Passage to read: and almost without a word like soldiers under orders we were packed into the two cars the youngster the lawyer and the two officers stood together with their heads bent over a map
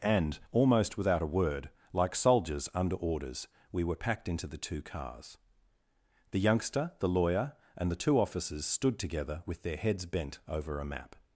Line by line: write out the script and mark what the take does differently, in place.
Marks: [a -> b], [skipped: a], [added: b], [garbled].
and almost without a word like soldiers under orders we were packed into the two cars the youngster the lawyer and the two officers stood together with their heads bent over a map